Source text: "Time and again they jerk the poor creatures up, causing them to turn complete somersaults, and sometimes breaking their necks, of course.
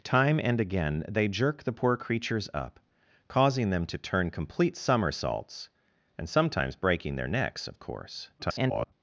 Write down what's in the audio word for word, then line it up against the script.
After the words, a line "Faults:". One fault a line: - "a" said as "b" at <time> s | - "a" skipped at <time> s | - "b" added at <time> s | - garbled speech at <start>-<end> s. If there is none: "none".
"Time and again they jerk the poor creatures up, causing them to turn complete somersaults, and sometimes breaking their necks, of course. [garbled]
Faults:
- garbled speech at 8.4-8.9 s